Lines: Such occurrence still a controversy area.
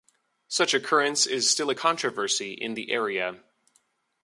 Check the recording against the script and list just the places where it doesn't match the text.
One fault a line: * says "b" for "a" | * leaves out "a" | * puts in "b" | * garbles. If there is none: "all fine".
* puts in "is"
* puts in "in the"